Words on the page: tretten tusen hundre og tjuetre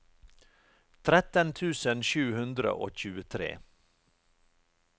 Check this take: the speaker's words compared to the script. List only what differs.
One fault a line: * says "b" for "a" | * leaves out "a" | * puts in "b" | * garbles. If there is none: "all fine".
* puts in "sju"